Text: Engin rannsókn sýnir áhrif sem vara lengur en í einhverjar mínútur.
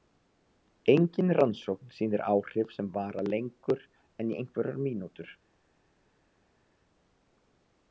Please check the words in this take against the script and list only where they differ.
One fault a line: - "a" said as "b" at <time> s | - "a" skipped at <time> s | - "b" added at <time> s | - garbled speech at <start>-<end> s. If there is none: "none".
none